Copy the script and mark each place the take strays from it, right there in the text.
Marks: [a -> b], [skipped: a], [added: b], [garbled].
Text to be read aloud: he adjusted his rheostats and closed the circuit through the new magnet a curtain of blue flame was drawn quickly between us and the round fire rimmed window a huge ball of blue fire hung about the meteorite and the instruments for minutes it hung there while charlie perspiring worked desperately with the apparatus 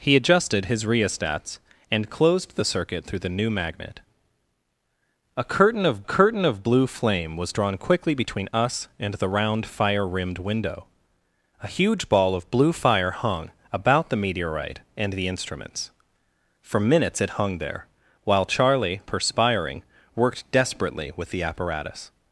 he adjusted his rheostats and closed the circuit through the new magnet a curtain of [added: curtain of] blue flame was drawn quickly between us and the round fire rimmed window a huge ball of blue fire hung about the meteorite and the instruments for minutes it hung there while charlie perspiring worked desperately with the apparatus